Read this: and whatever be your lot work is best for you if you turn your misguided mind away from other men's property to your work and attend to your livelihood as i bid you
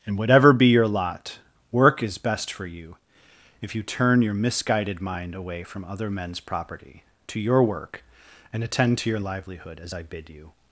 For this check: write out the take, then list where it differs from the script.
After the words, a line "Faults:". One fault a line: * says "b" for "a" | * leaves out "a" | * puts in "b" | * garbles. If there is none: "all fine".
and whatever be your lot work is best for you if you turn your misguided mind away from other men's property to your work and attend to your livelihood as i bid you
Faults:
all fine